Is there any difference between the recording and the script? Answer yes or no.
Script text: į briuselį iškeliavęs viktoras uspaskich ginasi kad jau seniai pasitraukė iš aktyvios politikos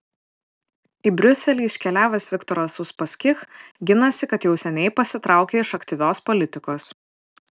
no